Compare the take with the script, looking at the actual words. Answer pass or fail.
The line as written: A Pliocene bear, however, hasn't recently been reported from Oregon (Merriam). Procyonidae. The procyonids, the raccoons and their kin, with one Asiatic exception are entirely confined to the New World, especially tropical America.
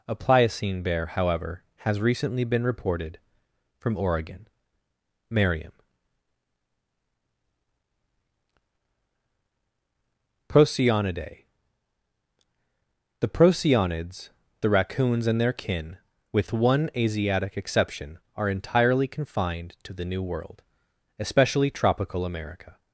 fail